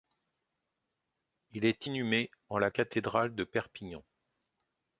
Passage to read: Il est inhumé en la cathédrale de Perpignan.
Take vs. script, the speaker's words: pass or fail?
pass